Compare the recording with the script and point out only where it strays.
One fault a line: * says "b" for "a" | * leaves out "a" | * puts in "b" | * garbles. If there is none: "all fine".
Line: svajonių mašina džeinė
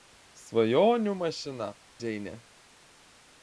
all fine